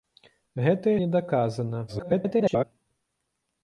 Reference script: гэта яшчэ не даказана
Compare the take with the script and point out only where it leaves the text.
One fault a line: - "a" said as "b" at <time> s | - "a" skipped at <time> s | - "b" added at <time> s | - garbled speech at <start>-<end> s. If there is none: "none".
- "яшчэ" skipped at 0.9 s
- garbled speech at 1.9-2.6 s